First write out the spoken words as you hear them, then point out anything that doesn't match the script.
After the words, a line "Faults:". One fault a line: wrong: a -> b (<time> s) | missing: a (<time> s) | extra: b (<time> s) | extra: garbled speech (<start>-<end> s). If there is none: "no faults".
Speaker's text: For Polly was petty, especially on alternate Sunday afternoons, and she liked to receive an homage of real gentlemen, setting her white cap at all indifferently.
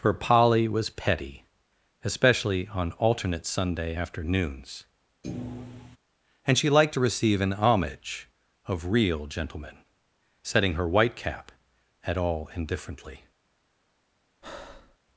For Polly was petty, especially on alternate Sunday afternoons, and she liked to receive an homage of real gentlemen, setting her white cap at all indifferently.
Faults:
no faults